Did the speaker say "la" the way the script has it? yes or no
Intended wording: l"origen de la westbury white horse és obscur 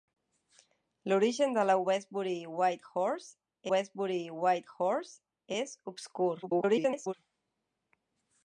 yes